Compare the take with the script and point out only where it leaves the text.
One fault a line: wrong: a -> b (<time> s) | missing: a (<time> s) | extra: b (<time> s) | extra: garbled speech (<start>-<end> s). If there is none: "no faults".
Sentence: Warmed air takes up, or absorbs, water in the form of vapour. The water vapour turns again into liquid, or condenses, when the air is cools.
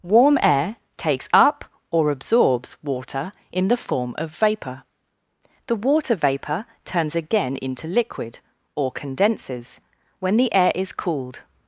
wrong: Warmed -> Warm (0.0 s)
wrong: cools -> cooled (10.9 s)